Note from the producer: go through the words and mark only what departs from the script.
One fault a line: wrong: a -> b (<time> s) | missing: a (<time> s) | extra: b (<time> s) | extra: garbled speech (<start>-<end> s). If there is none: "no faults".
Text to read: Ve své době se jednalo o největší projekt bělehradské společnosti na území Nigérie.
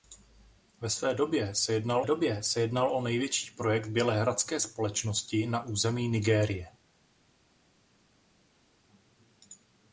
extra: době se jednalo (2.0 s)